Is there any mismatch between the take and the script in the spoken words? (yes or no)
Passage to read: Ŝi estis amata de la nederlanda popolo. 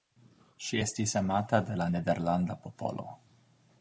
no